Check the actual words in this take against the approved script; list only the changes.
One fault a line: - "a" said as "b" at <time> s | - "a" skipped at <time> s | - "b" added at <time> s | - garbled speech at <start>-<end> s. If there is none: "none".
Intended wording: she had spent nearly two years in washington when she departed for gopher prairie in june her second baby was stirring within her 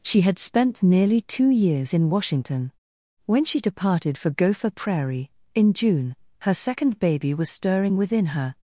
none